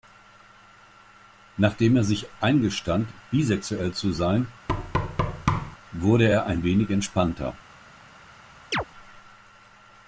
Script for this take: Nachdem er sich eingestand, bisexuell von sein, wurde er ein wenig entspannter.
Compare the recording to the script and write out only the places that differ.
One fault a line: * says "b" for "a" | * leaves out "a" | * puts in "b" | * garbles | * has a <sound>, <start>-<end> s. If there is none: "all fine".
* says "zu" for "von"
* has a thud, 4.7-5.8 s
* has a chirp, 8.7-8.8 s